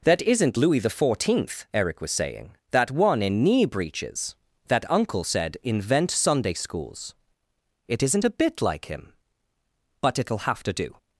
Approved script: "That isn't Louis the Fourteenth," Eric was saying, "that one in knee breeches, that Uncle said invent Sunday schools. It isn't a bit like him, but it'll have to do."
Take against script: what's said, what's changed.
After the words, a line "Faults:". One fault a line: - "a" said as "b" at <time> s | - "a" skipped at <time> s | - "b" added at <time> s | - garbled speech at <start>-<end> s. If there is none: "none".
"That isn't Louis the Fourteenth," Eric was saying, "that one in knee breeches, that Uncle said invent Sunday schools. It isn't a bit like him, but it'll have to do."
Faults:
none